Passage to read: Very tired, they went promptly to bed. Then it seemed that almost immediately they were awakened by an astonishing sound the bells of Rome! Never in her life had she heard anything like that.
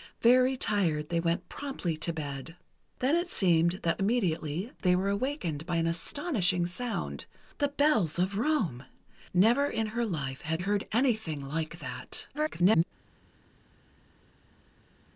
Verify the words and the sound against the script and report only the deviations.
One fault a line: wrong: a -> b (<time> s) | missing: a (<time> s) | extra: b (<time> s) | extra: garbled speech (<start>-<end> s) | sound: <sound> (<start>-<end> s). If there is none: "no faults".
missing: almost (4.0 s)
missing: she (10.6 s)
extra: garbled speech (12.3-12.8 s)